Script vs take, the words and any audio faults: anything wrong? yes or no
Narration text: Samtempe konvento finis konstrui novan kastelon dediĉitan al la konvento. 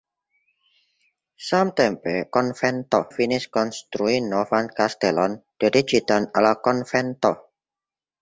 no